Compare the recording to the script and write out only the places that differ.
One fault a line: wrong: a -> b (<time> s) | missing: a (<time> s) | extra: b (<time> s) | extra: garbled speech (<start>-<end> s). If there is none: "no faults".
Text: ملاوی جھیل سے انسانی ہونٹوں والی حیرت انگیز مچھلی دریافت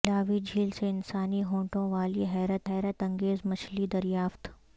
extra: حیرت (2.7 s)